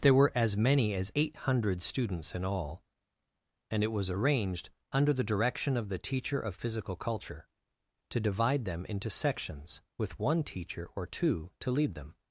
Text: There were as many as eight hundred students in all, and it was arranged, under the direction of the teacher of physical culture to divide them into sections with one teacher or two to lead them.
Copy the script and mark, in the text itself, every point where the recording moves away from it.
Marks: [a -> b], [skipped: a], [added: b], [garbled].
There were as many as eight hundred students in all, and it was arranged, under the direction of the teacher of physical culture to divide them into sections with one teacher or two to lead them.